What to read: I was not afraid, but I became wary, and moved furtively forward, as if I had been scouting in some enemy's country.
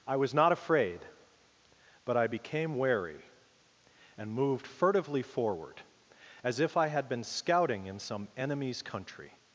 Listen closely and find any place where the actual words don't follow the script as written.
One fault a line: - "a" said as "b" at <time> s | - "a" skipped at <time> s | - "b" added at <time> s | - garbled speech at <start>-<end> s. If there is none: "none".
none